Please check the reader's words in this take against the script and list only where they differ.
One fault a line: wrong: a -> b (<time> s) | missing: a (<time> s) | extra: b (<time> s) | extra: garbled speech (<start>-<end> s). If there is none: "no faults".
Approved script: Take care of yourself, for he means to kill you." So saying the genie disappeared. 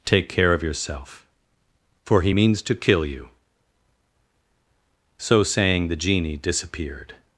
no faults